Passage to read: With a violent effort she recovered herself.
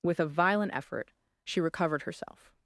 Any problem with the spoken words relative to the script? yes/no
no